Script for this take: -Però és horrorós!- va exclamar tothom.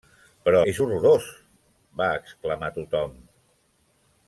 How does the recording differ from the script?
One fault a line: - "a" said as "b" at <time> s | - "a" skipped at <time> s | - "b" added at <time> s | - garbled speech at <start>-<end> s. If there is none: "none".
none